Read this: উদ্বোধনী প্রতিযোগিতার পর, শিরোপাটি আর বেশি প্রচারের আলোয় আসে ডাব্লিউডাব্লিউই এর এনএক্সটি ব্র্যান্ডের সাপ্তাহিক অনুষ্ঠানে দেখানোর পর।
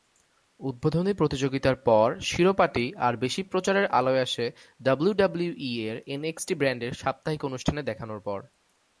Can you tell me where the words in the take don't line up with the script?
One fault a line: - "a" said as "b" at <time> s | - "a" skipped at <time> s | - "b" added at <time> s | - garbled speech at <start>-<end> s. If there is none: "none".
none